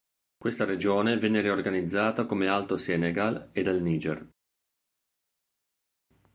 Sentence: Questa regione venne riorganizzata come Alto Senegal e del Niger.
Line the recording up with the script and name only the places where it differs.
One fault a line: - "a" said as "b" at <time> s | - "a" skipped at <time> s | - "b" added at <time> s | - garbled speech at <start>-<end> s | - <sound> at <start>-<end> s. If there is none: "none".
none